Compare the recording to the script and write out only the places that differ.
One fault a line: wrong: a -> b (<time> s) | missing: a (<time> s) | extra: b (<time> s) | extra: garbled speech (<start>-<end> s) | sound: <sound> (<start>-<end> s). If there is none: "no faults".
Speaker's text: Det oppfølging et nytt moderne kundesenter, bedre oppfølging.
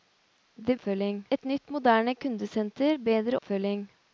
no faults